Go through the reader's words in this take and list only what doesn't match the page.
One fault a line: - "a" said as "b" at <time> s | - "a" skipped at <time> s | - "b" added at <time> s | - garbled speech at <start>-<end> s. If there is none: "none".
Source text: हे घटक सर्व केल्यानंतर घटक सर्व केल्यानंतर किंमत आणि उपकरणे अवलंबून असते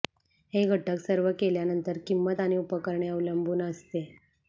- "घटक सर्व केल्यानंतर" skipped at 2.0 s